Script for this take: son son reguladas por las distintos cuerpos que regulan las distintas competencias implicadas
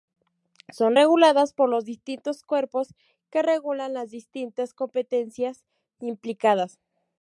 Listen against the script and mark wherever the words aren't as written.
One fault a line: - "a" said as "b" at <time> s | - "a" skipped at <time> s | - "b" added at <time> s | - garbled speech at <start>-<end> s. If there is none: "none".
- "son" skipped at 1.0 s
- "las" said as "los" at 1.7 s